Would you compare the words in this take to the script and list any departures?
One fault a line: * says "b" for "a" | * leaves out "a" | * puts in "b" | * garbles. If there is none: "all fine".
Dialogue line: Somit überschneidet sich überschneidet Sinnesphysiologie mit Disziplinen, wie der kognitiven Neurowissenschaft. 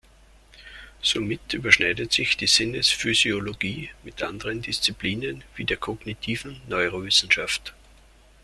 * says "die" for "überschneidet"
* puts in "anderen"